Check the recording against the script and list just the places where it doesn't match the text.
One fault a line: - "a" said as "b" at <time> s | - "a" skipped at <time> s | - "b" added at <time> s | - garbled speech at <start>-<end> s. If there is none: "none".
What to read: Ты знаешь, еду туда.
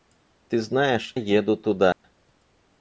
none